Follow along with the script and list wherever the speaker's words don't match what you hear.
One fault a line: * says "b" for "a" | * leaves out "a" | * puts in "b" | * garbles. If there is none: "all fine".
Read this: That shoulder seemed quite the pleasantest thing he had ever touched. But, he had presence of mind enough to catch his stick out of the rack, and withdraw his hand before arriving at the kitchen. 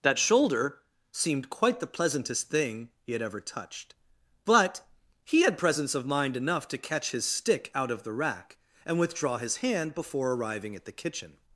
all fine